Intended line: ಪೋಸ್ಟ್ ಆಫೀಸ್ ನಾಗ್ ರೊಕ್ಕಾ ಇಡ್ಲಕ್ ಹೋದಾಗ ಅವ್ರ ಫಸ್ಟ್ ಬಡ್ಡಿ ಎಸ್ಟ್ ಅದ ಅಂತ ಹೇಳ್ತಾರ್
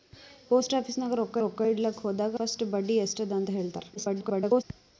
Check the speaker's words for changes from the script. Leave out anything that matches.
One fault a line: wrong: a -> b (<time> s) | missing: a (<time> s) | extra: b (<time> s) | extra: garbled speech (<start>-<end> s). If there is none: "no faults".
extra: ರೊಕ್ಕಾ (1.4 s)
missing: ಅವ್ರ (2.3 s)
extra: garbled speech (4.0-4.6 s)